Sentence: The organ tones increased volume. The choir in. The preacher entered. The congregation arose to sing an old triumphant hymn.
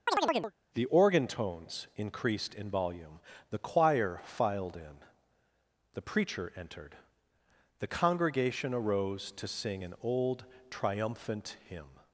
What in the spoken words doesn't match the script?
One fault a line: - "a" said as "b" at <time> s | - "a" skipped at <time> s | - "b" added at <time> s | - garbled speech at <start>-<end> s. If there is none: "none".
- "in" added at 2.5 s
- "filed" added at 4.2 s